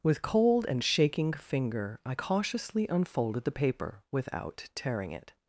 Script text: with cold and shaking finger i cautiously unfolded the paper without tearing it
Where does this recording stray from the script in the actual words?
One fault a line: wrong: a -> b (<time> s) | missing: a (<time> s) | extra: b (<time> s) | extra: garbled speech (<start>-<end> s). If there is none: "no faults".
no faults